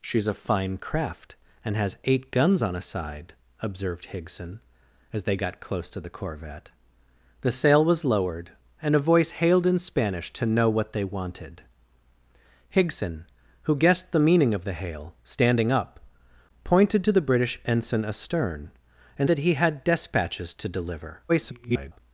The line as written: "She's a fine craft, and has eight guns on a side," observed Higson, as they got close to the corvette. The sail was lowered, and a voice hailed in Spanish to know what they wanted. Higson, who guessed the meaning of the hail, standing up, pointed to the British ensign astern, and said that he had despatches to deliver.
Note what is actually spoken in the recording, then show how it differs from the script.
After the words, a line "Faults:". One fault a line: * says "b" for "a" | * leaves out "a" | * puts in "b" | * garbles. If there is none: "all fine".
"She's a fine craft, and has eight guns on a side," observed Higson, as they got close to the corvette. The sail was lowered, and a voice hailed in Spanish to know what they wanted. Higson, who guessed the meaning of the hail, standing up, pointed to the British ensign astern, and that he had despatches to deliver. [garbled]
Faults:
* leaves out "said"
* garbles